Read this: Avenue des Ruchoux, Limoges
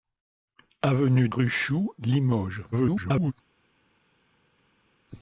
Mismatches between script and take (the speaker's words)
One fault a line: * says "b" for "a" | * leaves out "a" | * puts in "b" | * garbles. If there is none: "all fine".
* leaves out "des"
* garbles